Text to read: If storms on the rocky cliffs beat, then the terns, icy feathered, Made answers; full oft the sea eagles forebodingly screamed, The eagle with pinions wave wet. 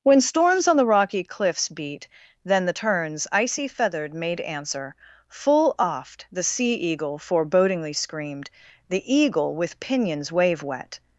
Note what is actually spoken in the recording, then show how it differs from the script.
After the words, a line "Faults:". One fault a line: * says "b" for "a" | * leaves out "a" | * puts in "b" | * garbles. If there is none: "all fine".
When storms on the rocky cliffs beat, then the terns, icy feathered, Made answer; full oft the sea eagle forebodingly screamed, The eagle with pinions wave wet.
Faults:
* says "When" for "If"
* says "answer" for "answers"
* says "eagle" for "eagles"